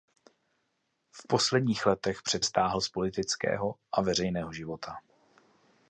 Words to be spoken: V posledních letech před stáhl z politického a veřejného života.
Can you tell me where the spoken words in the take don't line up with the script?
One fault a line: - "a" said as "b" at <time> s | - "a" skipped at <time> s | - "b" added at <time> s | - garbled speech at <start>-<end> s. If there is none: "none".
none